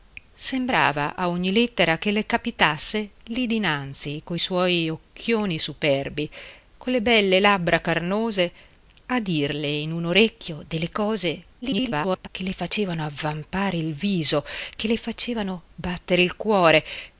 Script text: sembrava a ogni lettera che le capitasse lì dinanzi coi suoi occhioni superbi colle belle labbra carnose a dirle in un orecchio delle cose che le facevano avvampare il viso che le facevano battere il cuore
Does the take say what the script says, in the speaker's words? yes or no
no